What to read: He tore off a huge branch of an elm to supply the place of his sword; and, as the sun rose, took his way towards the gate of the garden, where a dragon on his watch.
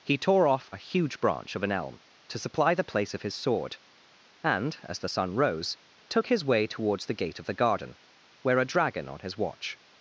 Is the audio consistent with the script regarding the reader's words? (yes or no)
yes